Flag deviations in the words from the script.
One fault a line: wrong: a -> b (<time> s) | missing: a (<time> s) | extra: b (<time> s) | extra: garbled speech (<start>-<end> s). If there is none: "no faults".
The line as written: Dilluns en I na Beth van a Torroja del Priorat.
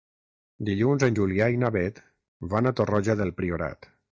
extra: Julià (1.2 s)